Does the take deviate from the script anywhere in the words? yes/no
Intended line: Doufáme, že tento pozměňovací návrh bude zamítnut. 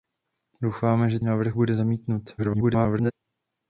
yes